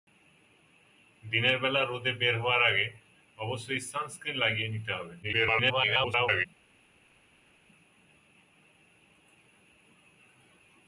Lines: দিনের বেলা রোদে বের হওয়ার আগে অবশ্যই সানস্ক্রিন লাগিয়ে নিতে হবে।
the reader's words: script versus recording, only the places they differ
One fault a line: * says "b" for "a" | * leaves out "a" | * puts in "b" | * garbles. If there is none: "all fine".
* garbles